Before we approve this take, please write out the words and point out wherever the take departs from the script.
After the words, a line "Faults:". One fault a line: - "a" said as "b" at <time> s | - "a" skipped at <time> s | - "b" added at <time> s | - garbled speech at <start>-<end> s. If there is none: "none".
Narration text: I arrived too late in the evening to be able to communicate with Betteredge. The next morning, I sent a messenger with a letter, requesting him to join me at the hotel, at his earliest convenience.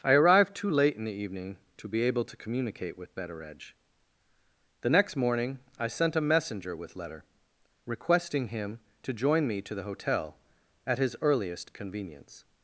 I arrived too late in the evening to be able to communicate with Betteredge. The next morning, I sent a messenger with letter, requesting him to join me to the hotel, at his earliest convenience.
Faults:
- "a" skipped at 7.0 s
- "at" said as "to" at 9.6 s